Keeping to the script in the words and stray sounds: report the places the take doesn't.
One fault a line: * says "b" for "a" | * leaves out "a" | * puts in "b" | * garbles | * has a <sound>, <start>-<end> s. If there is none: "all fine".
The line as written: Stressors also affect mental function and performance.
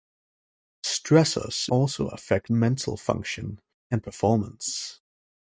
all fine